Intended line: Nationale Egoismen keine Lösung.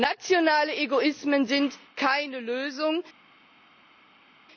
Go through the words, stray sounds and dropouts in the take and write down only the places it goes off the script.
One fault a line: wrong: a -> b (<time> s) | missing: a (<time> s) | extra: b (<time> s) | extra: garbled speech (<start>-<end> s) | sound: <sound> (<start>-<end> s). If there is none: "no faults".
extra: sind (1.4 s)